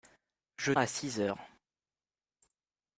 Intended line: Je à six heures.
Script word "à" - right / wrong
right